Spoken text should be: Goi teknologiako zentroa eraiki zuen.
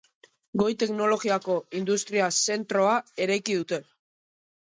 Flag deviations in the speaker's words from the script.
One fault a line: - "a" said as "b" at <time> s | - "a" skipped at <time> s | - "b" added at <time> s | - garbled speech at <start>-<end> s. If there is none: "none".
- "industria" added at 1.8 s
- "zuen" said as "dute" at 3.6 s